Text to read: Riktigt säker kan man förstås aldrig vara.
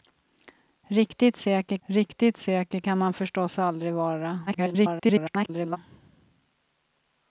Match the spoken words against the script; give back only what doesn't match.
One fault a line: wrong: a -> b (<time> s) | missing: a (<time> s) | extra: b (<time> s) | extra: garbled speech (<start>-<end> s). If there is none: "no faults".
extra: riktigt säker (1.9 s)
extra: garbled speech (4.5-5.8 s)